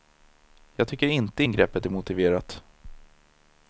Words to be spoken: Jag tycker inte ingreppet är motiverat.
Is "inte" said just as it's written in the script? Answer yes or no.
yes